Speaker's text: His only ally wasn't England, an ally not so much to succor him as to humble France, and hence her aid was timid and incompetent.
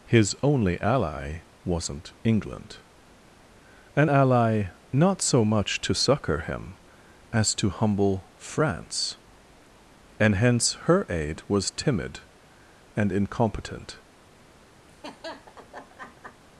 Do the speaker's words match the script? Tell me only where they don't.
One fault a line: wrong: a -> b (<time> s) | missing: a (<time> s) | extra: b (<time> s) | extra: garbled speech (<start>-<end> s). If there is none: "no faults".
no faults